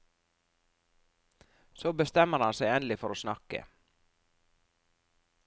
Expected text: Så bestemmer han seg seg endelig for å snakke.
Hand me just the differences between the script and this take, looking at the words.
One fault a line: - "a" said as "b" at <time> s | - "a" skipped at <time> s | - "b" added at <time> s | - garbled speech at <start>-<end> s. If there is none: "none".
- "seg" skipped at 2.7 s